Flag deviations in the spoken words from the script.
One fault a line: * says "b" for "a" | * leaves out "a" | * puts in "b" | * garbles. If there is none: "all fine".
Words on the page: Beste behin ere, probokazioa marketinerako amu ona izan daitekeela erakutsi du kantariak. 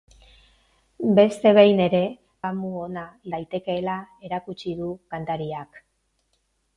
* leaves out "probokazioa marketinerako"
* leaves out "izan"